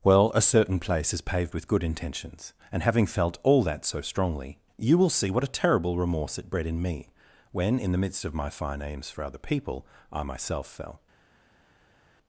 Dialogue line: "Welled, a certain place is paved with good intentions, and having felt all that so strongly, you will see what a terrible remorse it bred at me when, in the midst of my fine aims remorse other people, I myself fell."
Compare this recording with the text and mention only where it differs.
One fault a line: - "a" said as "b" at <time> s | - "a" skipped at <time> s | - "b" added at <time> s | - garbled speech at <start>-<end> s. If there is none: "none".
- "Welled" said as "Well" at 0.0 s
- "at" said as "in" at 6.6 s
- "remorse" said as "for" at 9.1 s